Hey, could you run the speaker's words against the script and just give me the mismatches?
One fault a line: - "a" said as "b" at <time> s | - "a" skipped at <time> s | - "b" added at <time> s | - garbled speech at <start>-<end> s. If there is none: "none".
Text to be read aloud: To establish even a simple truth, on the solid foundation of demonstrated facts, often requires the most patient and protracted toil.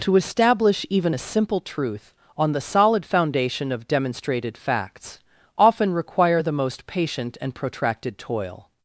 - "requires" said as "require" at 5.9 s